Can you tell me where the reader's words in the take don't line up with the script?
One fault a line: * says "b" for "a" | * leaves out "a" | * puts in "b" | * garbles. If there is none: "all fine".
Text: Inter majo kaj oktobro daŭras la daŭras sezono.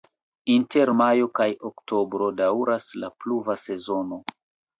* says "pluva" for "daŭras"